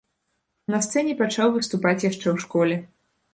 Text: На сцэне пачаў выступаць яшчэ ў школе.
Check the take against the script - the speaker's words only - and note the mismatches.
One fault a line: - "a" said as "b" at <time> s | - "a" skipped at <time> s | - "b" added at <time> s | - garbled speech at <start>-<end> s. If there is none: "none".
none